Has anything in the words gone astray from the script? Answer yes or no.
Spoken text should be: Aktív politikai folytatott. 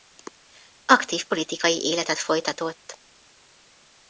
yes